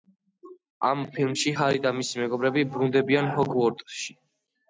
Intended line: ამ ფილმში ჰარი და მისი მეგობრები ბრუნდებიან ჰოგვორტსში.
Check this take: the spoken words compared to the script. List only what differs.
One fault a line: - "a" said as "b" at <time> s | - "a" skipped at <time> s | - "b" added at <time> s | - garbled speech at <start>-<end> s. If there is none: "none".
none